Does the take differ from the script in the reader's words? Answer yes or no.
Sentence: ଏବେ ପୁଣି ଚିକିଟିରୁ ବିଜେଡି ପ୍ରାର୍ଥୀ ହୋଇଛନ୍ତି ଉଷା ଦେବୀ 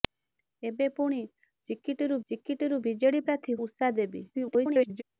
yes